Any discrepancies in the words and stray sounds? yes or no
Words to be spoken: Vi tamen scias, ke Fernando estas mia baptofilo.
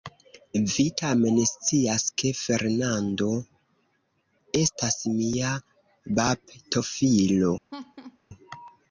yes